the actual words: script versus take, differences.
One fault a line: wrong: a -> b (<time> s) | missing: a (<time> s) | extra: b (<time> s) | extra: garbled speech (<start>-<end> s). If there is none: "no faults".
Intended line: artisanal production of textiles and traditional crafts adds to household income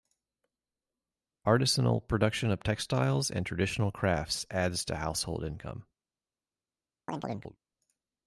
no faults